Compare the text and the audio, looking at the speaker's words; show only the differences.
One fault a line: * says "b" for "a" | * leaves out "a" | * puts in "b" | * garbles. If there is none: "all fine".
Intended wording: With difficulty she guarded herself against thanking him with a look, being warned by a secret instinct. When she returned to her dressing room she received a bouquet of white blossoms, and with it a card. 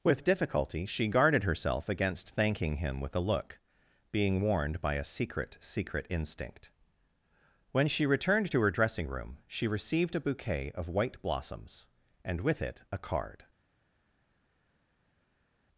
* puts in "secret"